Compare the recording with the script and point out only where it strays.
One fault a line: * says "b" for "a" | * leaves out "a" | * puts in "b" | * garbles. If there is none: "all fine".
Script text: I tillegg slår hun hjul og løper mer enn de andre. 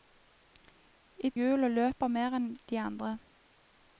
* leaves out "tillegg slår hun"